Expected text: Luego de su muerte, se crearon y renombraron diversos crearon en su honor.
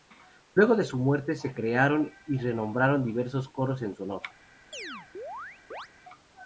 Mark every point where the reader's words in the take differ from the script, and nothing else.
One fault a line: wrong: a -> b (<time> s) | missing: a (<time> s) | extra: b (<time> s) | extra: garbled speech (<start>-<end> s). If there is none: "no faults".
wrong: crearon -> coros (3.5 s)